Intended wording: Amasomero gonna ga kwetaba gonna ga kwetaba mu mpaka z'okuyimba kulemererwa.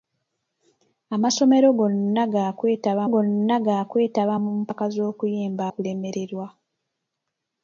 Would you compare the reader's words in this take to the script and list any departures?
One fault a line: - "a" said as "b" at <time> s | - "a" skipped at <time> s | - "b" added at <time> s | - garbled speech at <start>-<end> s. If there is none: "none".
none